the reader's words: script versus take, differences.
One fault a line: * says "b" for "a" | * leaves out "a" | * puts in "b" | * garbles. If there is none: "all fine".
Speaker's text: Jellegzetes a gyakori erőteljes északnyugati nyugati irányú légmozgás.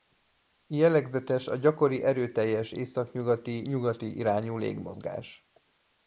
all fine